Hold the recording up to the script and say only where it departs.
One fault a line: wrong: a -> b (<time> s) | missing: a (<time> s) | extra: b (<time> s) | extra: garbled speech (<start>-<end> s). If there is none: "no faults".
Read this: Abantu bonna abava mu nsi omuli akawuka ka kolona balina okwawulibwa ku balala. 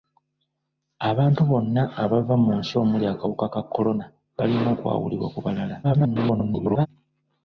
extra: garbled speech (5.8-6.9 s)